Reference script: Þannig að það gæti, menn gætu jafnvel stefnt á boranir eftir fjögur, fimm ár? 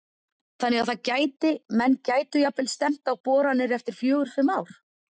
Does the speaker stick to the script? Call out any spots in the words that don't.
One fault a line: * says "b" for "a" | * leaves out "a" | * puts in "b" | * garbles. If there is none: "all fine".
all fine